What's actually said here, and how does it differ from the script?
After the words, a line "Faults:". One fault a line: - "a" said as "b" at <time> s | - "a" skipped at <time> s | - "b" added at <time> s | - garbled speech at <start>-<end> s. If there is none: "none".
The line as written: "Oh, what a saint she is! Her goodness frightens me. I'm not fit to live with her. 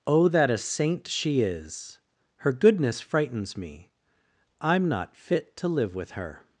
"Oh, that a saint she is! Her goodness frightens me. I'm not fit to live with her.
Faults:
- "what" said as "that" at 0.3 s